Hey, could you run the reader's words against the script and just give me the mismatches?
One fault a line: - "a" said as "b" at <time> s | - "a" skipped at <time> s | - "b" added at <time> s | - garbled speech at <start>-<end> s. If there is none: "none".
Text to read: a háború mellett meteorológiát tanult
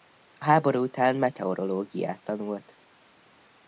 - "mellett" said as "után" at 0.8 s